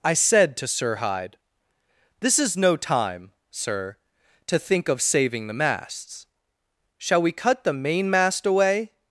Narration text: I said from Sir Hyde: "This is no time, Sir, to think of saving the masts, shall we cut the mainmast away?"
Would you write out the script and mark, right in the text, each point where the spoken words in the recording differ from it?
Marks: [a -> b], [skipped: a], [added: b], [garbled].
I said [from -> to] Sir Hyde: "This is no time, Sir, to think of saving the masts, shall we cut the mainmast away?"